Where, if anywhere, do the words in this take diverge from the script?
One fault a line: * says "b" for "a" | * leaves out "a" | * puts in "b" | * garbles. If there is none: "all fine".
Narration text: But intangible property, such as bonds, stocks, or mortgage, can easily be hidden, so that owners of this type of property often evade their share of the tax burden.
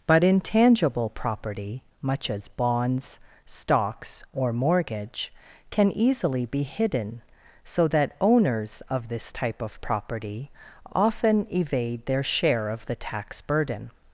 * says "much" for "such"